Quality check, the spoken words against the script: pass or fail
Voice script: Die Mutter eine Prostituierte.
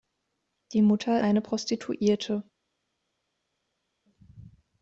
pass